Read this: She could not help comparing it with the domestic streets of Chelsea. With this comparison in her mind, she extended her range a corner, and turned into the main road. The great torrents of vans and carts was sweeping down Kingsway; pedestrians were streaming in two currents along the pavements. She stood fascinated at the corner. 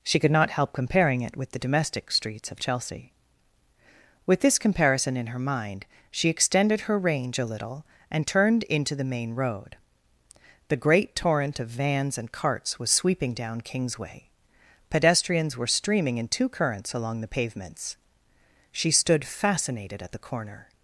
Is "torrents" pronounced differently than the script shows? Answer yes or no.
yes